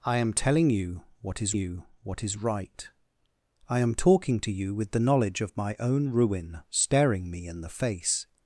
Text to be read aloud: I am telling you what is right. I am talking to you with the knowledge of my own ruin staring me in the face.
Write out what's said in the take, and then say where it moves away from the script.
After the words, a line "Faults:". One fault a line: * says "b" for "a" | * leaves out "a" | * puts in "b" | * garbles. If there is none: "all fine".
I am telling you what is you what is right. I am talking to you with the knowledge of my own ruin staring me in the face.
Faults:
* puts in "you what is"